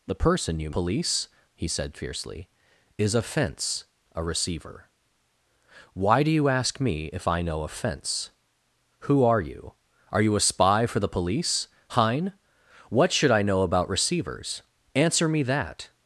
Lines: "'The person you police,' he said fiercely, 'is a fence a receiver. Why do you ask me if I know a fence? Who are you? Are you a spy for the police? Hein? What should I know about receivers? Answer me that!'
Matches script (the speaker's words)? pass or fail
pass